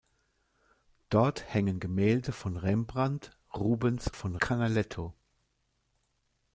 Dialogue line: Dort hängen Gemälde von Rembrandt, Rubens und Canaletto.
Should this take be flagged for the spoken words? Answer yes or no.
yes